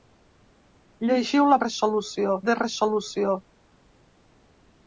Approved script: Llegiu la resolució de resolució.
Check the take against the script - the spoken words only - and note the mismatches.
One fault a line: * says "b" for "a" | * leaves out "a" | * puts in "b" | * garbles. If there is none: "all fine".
all fine